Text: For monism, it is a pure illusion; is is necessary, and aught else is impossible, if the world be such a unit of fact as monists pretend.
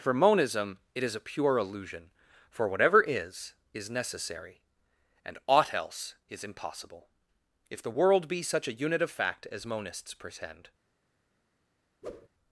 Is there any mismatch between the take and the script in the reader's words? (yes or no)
yes